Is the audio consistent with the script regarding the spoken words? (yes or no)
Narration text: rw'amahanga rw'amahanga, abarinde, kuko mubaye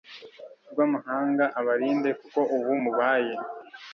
no